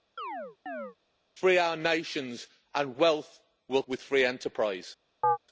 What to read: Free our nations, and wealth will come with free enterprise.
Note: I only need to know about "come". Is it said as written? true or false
false